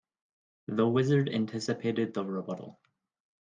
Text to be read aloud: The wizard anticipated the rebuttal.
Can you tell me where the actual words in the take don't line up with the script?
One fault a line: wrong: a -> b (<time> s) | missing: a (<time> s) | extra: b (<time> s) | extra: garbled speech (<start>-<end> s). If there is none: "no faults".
no faults